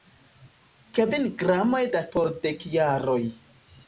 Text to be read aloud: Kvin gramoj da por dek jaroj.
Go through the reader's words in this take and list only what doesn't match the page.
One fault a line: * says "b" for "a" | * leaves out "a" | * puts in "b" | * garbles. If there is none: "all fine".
all fine